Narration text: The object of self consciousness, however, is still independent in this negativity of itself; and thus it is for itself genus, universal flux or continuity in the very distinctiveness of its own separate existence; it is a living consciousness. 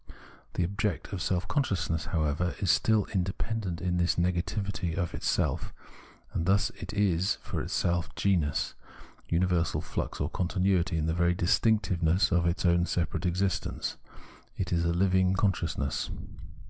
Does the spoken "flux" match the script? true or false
true